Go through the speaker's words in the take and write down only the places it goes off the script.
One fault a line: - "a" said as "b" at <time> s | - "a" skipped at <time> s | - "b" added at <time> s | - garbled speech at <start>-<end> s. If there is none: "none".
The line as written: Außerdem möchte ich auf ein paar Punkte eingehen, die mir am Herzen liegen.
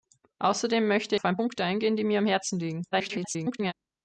- "ich" skipped at 1.1 s
- "paar" skipped at 1.4 s
- garbled speech at 2.9-3.7 s